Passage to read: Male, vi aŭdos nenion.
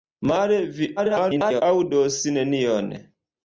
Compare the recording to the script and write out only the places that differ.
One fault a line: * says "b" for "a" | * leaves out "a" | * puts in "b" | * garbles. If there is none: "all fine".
* garbles